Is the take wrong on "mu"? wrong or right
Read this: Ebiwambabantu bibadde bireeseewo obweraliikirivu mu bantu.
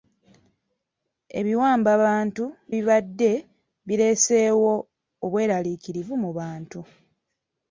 right